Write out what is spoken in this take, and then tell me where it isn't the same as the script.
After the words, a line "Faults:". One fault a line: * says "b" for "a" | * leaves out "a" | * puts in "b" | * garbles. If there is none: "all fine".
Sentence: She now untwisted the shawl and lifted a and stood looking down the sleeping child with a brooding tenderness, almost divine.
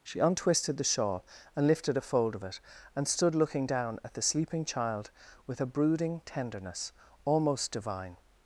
She untwisted the shawl and lifted a fold of it, and stood looking down at the sleeping child with a brooding tenderness, almost divine.
Faults:
* leaves out "now"
* puts in "fold of it"
* puts in "at"